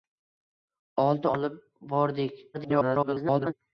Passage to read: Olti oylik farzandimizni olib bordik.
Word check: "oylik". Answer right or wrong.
wrong